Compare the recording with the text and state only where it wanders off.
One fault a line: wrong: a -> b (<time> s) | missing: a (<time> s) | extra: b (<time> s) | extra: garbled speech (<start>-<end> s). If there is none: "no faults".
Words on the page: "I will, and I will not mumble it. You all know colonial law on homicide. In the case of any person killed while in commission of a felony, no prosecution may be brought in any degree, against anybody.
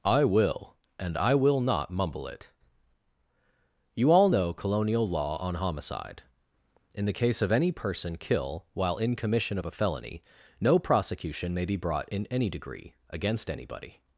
wrong: killed -> kill (8.2 s)